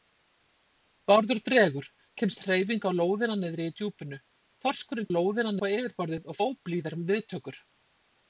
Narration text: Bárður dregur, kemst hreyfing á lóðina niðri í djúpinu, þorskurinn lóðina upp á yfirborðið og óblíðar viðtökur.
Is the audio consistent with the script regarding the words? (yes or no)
yes